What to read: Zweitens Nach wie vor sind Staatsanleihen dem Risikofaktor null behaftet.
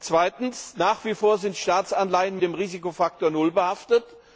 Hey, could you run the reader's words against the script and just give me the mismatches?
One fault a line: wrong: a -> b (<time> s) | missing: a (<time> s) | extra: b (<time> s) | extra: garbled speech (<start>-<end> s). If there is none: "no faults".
no faults